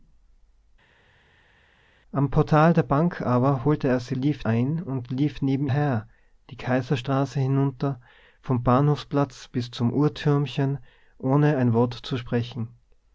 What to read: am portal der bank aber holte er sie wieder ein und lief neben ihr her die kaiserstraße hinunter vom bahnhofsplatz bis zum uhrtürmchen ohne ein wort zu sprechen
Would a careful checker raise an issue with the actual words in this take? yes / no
yes